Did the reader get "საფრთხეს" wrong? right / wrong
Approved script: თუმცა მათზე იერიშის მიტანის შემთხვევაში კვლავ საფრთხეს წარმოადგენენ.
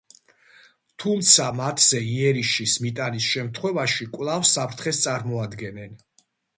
right